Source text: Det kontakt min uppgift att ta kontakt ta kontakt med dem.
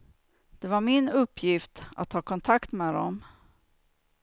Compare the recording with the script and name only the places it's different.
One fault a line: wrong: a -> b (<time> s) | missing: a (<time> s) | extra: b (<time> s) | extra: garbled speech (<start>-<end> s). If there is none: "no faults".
wrong: kontakt -> var (0.7 s)
missing: ta kontakt (2.7 s)